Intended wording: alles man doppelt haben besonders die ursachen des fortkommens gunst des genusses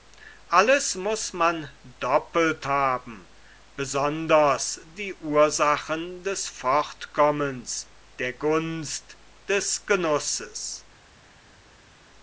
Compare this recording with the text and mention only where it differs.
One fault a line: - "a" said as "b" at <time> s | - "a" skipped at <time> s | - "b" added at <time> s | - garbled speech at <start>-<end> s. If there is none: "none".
- "muß" added at 0.9 s
- "der" added at 8.2 s